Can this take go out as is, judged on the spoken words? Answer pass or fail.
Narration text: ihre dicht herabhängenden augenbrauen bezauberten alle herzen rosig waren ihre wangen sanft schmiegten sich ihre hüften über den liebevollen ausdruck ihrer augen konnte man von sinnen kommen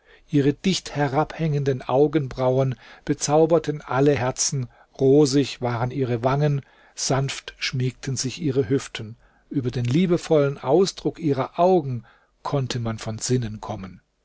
pass